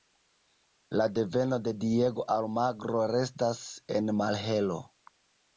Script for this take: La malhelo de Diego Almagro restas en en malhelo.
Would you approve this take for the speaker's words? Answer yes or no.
no